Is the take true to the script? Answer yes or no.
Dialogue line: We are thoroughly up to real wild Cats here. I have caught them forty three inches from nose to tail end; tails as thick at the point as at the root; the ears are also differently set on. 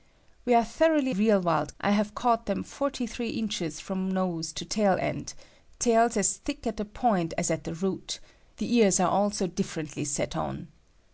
no